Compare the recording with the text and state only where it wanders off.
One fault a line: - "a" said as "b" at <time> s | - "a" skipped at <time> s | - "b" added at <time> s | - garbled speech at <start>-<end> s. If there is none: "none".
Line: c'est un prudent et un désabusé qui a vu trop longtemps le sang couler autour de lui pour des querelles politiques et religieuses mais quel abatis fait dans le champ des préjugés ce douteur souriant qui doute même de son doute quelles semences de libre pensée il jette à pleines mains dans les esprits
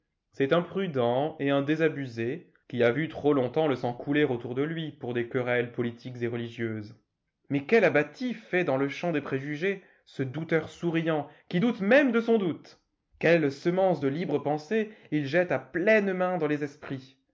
none